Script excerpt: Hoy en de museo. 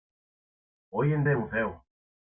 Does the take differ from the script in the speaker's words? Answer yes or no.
no